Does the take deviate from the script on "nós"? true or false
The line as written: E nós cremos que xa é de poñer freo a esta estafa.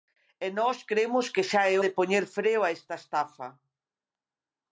false